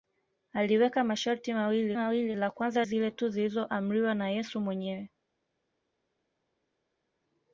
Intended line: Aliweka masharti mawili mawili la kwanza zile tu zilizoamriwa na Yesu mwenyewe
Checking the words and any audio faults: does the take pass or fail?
pass